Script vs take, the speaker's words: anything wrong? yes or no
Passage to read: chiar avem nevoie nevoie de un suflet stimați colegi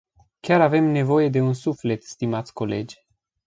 yes